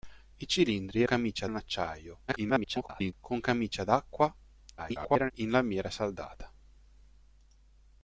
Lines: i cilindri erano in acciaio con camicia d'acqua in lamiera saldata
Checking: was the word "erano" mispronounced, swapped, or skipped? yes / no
yes